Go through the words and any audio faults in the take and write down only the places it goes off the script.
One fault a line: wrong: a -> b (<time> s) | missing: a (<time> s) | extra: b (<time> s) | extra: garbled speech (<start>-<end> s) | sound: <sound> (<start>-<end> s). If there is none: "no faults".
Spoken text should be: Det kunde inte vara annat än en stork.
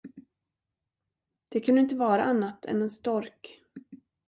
no faults